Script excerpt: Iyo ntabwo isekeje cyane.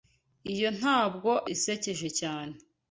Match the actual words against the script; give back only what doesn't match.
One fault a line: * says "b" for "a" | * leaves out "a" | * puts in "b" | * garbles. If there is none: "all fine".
all fine